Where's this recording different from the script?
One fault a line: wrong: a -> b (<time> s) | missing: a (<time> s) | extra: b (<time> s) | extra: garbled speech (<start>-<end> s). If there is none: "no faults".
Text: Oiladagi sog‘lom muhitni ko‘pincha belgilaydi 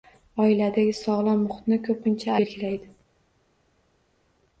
no faults